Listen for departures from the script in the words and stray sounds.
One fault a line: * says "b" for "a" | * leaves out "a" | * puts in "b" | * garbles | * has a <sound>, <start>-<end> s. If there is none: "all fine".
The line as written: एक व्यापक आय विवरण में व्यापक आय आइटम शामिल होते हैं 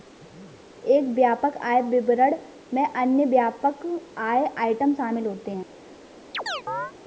* puts in "अन्य"
* has a chirp, 6.3-6.9 s